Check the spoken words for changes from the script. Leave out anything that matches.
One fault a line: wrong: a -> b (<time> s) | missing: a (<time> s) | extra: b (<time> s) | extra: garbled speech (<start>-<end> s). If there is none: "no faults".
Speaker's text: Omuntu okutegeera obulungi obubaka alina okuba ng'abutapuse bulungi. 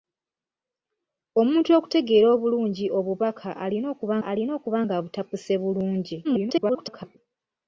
extra: alina okuba (4.3 s)
extra: garbled speech (6.2-7.2 s)